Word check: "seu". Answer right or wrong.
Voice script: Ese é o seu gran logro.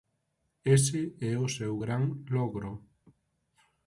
right